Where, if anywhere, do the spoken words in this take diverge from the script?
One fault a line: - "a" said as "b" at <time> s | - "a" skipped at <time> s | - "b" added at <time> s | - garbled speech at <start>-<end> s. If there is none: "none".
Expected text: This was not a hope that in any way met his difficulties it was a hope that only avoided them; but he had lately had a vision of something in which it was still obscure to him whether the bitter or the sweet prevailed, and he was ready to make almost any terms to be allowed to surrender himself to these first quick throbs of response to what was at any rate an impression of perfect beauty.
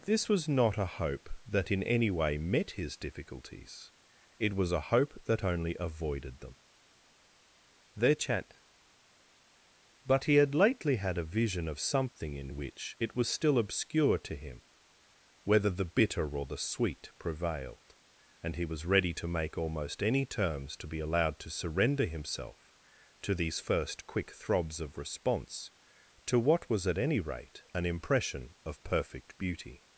- "their chat" added at 7.9 s